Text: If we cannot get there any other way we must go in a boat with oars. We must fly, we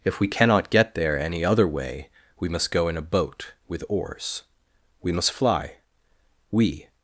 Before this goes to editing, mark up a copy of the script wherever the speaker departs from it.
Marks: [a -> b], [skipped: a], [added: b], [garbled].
If we cannot get there any other way we must go in a boat with oars. We must fly, we